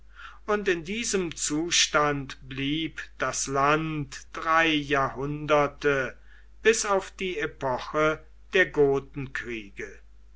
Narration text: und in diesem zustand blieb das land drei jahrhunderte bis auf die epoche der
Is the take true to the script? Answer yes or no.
yes